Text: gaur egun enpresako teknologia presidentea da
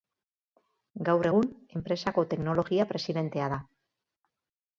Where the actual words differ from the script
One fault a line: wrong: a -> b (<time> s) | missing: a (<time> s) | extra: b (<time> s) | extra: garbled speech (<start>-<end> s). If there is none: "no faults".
no faults